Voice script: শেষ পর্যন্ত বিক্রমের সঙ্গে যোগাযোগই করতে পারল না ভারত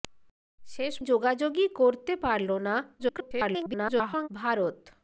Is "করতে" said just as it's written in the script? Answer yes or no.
yes